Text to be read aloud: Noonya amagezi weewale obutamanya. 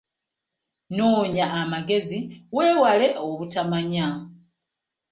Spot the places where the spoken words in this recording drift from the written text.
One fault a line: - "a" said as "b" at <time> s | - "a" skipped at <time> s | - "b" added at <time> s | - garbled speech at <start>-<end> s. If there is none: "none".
none